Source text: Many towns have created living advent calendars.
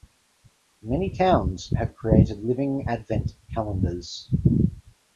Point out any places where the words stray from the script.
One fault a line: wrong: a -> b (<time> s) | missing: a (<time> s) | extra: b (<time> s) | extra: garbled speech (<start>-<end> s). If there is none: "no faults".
no faults